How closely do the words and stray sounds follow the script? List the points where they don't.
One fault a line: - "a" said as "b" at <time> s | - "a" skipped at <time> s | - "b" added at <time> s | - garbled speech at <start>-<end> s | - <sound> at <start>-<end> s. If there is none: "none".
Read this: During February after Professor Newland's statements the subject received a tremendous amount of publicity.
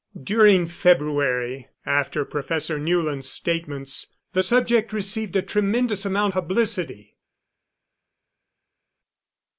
- "of" skipped at 6.3 s